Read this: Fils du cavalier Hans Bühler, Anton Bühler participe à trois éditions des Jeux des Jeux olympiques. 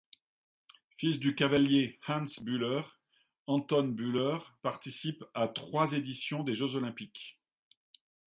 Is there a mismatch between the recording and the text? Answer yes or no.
yes